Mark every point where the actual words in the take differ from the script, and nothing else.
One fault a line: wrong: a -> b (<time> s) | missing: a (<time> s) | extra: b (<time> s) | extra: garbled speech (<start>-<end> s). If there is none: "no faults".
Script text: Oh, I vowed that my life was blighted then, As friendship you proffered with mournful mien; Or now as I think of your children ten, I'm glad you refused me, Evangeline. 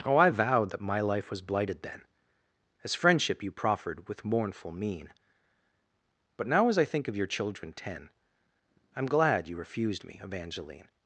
wrong: Or -> But (6.4 s)